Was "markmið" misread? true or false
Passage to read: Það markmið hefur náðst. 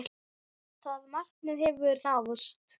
false